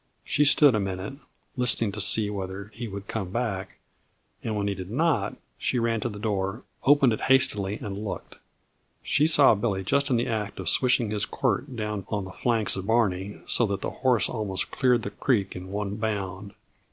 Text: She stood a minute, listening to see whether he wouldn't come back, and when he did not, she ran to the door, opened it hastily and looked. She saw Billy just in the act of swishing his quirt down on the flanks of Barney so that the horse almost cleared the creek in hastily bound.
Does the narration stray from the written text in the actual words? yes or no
yes